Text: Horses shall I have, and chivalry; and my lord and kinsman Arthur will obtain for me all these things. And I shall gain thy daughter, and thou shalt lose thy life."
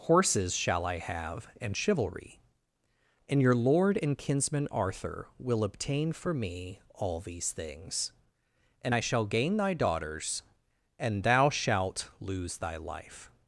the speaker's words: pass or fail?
fail